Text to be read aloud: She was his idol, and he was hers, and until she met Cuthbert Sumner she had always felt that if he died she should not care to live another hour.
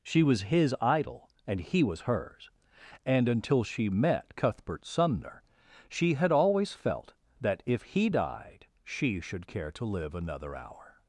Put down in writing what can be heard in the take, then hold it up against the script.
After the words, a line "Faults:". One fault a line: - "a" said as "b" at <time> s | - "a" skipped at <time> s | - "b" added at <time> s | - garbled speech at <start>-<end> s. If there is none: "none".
She was his idol, and he was hers, and until she met Cuthbert Sumner she had always felt that if he died she should care to live another hour.
Faults:
- "not" skipped at 9.5 s